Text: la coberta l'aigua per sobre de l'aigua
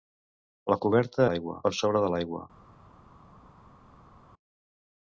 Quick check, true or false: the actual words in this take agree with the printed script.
true